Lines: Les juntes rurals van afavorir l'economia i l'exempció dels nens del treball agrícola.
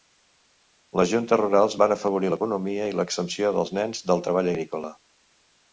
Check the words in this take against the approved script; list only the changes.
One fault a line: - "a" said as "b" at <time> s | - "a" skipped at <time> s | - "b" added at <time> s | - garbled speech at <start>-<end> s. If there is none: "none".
none